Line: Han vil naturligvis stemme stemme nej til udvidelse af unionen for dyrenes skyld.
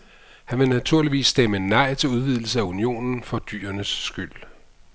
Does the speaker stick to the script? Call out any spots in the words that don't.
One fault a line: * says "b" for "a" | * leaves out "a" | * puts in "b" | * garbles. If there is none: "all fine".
* leaves out "stemme"